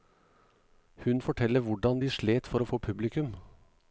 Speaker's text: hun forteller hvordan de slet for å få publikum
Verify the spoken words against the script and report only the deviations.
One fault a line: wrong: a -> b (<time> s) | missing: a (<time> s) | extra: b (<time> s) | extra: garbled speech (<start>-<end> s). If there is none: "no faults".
no faults